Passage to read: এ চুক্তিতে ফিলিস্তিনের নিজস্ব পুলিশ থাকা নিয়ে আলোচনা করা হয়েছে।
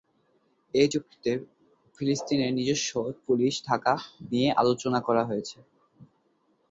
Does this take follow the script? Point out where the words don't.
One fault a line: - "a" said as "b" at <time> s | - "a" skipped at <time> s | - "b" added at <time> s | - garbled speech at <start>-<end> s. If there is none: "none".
none